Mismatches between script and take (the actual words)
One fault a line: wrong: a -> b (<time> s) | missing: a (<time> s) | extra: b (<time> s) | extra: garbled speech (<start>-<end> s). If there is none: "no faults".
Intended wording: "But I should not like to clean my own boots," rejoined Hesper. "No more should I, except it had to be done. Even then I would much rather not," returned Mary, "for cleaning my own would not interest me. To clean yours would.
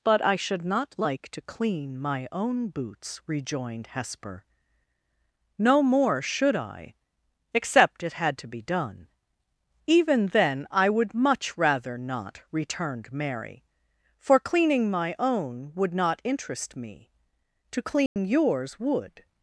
no faults